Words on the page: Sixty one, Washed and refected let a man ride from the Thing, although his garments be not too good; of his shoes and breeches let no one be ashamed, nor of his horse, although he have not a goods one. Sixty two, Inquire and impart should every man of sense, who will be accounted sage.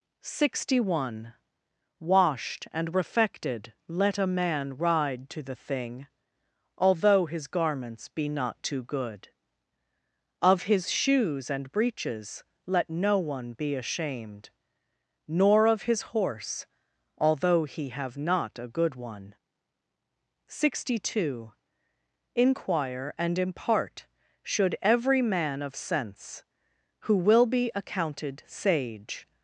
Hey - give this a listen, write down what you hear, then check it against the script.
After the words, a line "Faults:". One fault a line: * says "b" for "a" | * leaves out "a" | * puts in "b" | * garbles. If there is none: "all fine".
Sixty one, Washed and refected let a man ride to the Thing, although his garments be not too good; of his shoes and breeches let no one be ashamed, nor of his horse, although he have not a good one. Sixty two, Inquire and impart should every man of sense, who will be accounted sage.
Faults:
* says "to" for "from"
* says "good" for "goods"